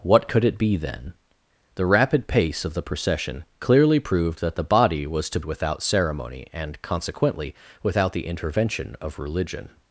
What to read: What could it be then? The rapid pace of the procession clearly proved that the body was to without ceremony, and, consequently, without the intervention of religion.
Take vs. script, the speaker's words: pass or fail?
pass